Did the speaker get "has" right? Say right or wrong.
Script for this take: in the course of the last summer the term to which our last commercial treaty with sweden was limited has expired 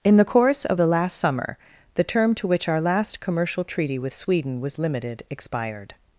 wrong